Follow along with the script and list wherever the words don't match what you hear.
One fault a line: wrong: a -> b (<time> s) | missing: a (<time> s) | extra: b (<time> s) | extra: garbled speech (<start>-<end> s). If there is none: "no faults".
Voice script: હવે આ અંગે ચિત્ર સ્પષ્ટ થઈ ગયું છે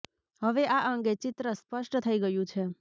no faults